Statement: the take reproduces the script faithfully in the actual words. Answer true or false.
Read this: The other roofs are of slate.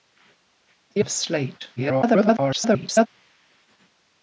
false